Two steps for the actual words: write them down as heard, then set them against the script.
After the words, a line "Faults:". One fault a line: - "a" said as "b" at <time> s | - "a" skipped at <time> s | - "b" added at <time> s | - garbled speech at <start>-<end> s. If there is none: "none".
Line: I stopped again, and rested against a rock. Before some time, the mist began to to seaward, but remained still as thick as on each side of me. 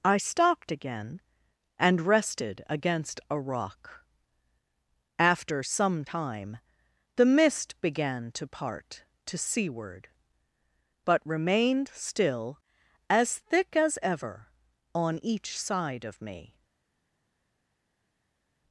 I stopped again, and rested against a rock. After some time, the mist began to part to seaward, but remained still as thick as ever on each side of me.
Faults:
- "Before" said as "After" at 5.2 s
- "part" added at 8.5 s
- "ever" added at 14.0 s